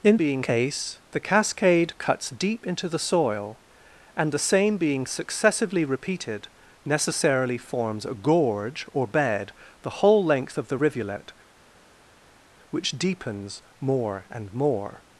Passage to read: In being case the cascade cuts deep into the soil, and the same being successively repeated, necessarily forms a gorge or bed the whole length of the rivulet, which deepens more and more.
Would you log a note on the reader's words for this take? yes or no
no